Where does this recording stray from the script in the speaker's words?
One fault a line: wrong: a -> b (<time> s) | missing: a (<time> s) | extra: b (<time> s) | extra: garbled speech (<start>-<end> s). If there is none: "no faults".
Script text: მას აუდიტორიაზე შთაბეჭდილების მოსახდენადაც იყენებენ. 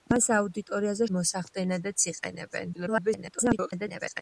missing: შთაბეჭდილების (1.1 s)
extra: garbled speech (2.7-4.2 s)